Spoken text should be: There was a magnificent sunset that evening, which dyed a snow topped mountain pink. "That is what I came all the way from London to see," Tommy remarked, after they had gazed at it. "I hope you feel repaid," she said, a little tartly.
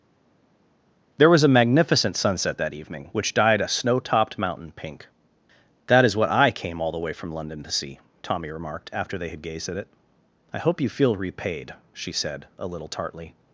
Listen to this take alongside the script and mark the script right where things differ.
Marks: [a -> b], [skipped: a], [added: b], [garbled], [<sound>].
There was a magnificent sunset that evening, which dyed a snow topped mountain pink. "That is what I came all the way from London to see," Tommy remarked, after they had gazed at it. "I hope you feel repaid," she said, a little tartly.